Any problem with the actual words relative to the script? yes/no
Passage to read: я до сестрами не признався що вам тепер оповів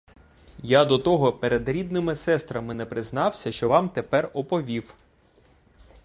yes